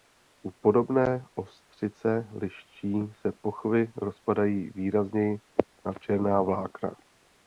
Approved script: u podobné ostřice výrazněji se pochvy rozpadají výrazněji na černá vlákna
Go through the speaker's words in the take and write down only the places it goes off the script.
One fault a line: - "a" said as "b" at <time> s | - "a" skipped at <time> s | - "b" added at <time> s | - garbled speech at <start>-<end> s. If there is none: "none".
- "výrazněji" said as "liščí" at 2.3 s